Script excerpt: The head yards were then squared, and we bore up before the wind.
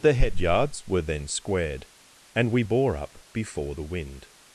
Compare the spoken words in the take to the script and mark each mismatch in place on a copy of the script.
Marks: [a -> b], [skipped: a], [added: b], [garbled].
The head yards were then squared, and we bore up before the wind.